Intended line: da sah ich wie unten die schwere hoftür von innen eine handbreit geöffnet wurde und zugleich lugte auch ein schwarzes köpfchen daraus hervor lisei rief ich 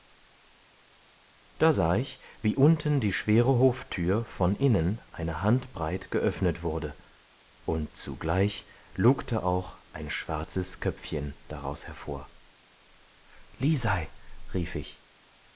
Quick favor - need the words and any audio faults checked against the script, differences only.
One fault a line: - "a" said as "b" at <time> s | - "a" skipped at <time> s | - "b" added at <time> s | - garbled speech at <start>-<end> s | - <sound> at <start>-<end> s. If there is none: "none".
none